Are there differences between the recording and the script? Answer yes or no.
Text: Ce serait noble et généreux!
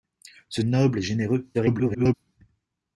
yes